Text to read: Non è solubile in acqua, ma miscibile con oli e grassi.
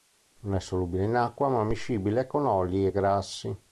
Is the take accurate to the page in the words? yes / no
yes